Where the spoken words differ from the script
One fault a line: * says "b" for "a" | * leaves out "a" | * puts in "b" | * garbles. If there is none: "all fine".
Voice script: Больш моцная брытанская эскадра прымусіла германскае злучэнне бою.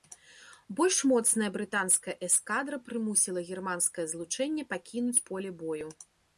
* puts in "пакінуць поле"